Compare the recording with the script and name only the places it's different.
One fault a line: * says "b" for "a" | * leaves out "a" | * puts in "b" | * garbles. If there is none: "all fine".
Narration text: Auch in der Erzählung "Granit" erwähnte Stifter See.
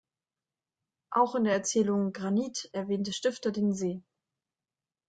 * puts in "den"